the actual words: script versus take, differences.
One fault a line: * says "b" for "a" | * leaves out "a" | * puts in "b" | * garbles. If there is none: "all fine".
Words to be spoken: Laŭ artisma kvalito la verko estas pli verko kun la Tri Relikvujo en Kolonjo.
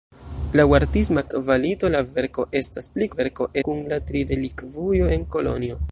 all fine